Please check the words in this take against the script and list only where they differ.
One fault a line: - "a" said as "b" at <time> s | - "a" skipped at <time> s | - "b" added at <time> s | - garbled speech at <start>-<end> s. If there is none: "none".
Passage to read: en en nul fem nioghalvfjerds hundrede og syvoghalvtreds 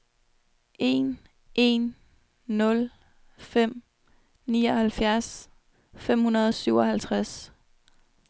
- "fem" added at 5.9 s